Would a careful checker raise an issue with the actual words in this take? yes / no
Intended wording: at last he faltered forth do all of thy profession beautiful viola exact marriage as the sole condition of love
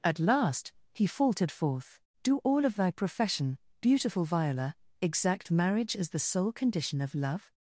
no